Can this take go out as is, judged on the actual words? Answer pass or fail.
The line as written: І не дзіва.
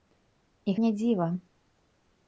pass